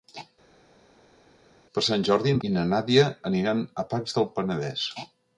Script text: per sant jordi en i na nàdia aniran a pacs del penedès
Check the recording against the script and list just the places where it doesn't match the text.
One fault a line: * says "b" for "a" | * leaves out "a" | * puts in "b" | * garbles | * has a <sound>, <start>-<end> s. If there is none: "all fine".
all fine